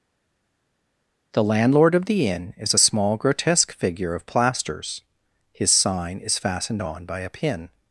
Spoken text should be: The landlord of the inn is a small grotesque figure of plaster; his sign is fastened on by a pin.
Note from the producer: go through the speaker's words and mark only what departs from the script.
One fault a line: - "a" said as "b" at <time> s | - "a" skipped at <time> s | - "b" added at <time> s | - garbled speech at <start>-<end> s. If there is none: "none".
- "plaster" said as "plasters" at 4.2 s